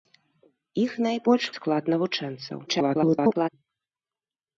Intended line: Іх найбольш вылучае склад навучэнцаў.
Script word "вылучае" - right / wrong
wrong